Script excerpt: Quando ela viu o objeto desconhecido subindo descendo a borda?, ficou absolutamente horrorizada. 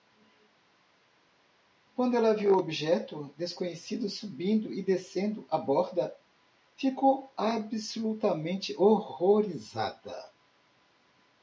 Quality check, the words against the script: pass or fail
fail